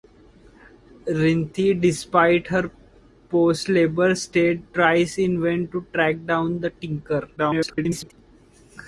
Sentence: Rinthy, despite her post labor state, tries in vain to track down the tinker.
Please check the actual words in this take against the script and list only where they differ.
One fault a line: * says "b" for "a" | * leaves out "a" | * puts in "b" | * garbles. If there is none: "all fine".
* garbles